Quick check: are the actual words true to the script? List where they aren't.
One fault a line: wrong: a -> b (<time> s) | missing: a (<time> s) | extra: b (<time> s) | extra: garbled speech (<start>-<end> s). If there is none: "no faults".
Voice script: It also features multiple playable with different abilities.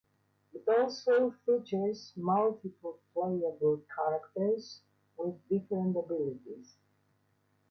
extra: characters (3.9 s)